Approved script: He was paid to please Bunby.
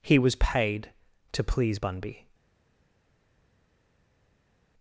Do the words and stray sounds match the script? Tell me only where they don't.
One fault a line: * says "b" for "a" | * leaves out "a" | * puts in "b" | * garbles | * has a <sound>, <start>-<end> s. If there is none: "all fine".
all fine